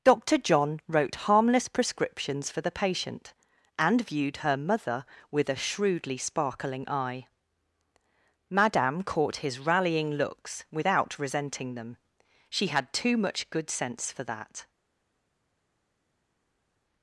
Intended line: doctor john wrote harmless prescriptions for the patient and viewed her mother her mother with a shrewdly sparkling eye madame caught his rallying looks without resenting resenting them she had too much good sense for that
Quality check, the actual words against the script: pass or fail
fail